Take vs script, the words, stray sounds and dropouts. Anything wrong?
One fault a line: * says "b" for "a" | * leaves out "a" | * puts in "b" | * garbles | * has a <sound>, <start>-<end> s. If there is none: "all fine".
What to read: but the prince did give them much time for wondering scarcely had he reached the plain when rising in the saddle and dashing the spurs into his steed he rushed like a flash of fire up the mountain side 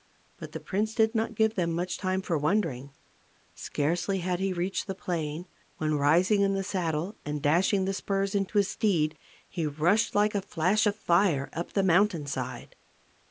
* puts in "not"